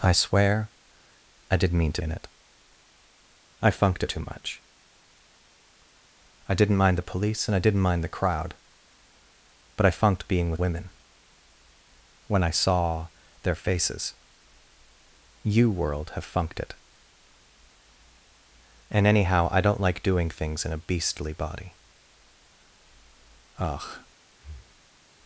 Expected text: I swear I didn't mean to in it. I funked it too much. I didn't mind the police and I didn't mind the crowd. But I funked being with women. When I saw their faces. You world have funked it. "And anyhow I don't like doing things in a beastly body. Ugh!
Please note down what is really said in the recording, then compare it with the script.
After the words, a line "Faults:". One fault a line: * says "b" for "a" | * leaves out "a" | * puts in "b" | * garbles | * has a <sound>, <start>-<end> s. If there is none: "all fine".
I swear I didn't mean to in it. I funked it too much. I didn't mind the police and I didn't mind the crowd. But I funked being with women. When I saw their faces. You world have funked it. "And anyhow I don't like doing things in a beastly body. Ugh!
Faults:
* has a breath, 24.3-25.0 s